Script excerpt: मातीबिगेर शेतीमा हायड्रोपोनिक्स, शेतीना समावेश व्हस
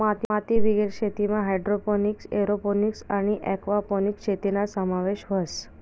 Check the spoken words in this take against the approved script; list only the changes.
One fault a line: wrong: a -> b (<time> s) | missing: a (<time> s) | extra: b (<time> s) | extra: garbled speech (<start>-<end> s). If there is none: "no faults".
extra: एरोपोनिक्स आणि एक्वापोनिक्स (2.4 s)